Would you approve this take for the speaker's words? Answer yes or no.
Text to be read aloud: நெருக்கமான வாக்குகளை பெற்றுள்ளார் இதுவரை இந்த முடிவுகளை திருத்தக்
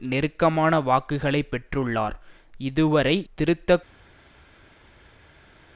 no